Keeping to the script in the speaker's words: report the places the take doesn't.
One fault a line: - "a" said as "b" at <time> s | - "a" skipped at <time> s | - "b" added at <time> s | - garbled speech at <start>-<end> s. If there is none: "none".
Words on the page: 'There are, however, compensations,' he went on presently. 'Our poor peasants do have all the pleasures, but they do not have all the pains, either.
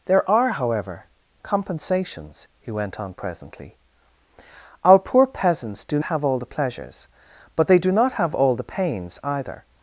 none